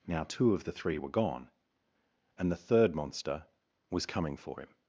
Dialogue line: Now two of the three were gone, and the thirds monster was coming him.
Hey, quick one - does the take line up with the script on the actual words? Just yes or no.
no